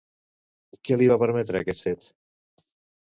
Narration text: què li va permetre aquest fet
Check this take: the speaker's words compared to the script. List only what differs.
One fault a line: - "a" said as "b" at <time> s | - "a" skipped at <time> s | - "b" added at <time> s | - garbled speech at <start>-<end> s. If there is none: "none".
none